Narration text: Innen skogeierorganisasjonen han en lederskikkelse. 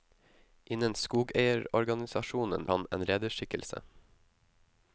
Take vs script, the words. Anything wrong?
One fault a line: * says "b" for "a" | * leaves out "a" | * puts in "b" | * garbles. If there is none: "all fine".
all fine